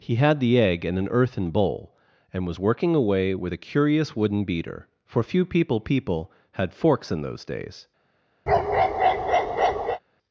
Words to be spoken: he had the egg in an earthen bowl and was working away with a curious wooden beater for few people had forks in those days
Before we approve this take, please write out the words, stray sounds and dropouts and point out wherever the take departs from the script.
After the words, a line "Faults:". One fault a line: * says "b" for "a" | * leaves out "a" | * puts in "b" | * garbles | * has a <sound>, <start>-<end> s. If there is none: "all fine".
he had the egg in an earthen bowl and was working away with a curious wooden beater for few people people had forks in those days
Faults:
* puts in "people"
* has a bark, 8.5-10.0 s